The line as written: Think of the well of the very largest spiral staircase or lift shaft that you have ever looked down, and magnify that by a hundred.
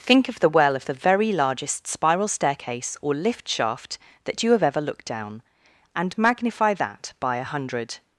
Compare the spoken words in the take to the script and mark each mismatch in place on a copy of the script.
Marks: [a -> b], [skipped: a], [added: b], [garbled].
Think of the well of the very largest spiral staircase or lift shaft that you have ever looked down, and magnify that by a hundred.